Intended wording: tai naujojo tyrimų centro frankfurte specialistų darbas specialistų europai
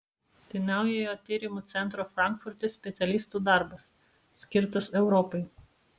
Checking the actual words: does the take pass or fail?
fail